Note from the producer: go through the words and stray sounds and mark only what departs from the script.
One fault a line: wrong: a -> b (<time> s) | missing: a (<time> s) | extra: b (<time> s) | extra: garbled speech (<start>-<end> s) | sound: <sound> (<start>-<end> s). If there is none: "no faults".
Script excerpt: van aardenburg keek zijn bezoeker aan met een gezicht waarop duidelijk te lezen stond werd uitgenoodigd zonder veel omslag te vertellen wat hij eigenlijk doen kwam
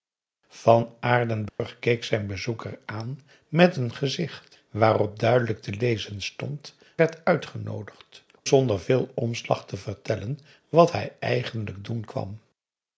sound: dropout (1.5-1.6 s)